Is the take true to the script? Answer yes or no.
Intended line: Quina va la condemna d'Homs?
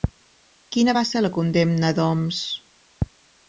no